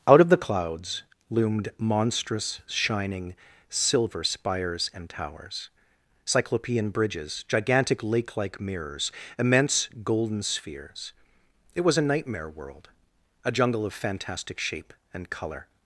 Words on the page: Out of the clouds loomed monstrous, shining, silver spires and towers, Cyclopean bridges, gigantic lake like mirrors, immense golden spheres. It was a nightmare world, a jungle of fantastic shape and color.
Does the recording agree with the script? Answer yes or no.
yes